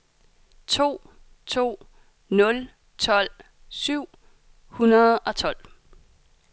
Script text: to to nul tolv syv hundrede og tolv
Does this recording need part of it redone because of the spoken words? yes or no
no